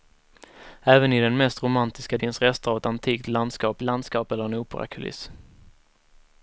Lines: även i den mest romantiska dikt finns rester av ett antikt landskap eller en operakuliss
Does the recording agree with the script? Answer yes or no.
no